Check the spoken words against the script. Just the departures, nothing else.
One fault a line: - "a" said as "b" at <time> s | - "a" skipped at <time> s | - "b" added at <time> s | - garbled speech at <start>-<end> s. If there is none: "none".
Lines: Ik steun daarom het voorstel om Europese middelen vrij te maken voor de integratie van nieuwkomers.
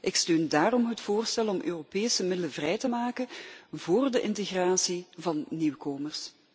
none